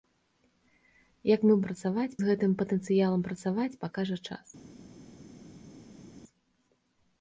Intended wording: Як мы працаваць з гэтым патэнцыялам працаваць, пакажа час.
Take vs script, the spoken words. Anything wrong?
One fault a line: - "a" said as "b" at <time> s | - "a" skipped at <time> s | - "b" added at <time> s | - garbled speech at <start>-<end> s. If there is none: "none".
none